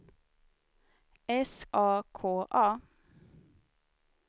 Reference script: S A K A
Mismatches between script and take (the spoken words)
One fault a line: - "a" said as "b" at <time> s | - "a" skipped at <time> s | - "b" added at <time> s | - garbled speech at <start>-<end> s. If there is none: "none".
none